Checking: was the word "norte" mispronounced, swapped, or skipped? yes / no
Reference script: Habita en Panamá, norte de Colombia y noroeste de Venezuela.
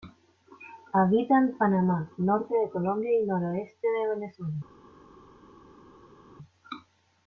no